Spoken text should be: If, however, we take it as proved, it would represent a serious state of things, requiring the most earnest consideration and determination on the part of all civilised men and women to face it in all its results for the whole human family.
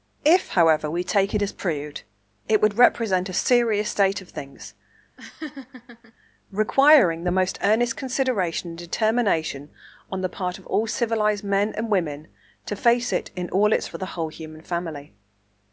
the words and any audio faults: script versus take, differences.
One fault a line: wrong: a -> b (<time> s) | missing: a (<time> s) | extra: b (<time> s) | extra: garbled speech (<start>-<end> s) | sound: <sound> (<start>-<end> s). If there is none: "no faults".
sound: laugh (5.2-6.1 s)
missing: results (13.9 s)